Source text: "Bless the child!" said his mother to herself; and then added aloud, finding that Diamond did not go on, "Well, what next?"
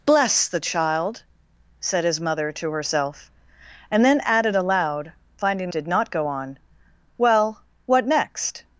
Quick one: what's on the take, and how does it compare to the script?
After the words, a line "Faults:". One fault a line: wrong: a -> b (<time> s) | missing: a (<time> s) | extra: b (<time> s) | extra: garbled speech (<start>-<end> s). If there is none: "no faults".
"Bless the child!" said his mother to herself; and then added aloud, finding did not go on, "Well, what next?"
Faults:
missing: that Diamond (5.7 s)